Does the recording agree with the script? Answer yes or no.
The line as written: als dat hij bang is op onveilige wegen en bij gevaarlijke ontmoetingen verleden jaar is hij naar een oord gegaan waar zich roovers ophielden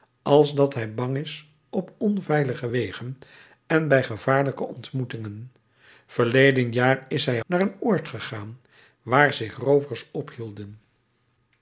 yes